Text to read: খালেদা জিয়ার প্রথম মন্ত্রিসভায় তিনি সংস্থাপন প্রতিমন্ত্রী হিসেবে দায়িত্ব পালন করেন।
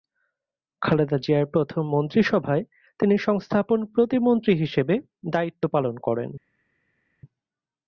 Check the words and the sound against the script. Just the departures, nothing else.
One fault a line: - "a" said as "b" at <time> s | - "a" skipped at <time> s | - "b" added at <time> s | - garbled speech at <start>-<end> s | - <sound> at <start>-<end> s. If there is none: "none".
none